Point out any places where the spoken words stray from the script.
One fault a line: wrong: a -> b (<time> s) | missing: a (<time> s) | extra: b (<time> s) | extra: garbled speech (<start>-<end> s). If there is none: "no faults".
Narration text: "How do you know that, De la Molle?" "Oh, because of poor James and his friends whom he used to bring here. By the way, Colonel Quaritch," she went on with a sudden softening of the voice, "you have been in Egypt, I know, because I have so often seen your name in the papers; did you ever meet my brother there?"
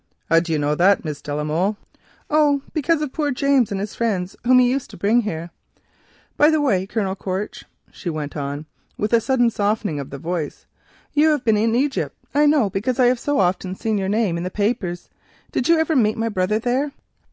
extra: Miss (1.1 s)